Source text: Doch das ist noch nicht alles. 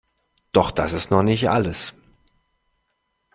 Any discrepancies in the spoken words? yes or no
no